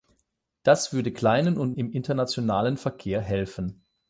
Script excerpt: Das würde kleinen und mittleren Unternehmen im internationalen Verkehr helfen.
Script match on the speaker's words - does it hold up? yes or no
no